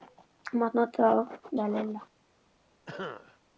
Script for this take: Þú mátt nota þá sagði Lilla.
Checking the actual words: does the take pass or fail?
pass